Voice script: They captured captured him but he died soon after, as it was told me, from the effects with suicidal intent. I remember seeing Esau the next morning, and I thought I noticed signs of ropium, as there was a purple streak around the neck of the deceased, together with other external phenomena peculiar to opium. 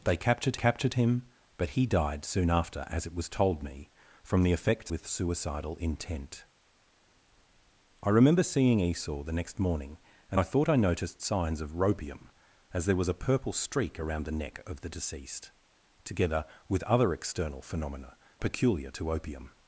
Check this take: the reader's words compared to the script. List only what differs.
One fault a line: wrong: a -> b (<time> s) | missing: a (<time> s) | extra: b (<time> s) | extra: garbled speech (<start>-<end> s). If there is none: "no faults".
no faults